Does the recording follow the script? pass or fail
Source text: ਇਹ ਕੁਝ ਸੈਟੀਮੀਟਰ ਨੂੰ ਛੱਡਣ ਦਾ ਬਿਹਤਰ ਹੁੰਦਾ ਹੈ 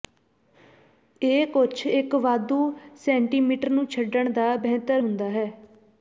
fail